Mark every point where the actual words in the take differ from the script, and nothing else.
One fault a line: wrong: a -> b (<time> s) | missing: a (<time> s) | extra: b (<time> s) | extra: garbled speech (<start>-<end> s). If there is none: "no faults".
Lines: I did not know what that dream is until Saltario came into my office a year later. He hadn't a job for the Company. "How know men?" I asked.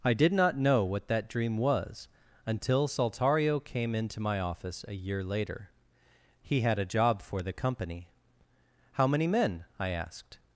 wrong: is -> was (1.6 s)
wrong: hadn't -> had (6.6 s)
wrong: know -> many (9.1 s)